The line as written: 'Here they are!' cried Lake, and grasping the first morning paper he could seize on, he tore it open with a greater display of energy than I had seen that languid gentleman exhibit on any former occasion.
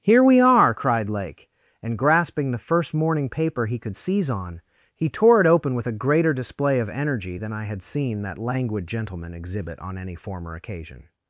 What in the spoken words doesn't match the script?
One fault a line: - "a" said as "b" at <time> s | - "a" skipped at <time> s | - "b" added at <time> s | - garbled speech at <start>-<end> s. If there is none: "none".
- "they" said as "we" at 0.2 s